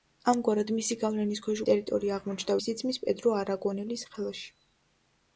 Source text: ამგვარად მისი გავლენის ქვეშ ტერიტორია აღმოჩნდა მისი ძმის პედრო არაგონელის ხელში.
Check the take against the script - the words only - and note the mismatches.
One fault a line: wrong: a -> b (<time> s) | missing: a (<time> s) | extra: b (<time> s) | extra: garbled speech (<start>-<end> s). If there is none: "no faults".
no faults